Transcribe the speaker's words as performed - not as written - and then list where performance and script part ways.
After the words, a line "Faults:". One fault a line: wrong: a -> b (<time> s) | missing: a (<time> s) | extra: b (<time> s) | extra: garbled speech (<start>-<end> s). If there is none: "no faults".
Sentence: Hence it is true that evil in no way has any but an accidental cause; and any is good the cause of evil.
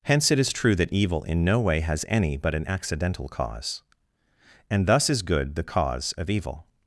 Hence it is true that evil in no way has any but an accidental cause; and thus is good the cause of evil.
Faults:
wrong: any -> thus (4.9 s)